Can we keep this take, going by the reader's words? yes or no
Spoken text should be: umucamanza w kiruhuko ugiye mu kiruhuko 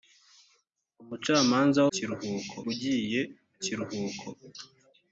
yes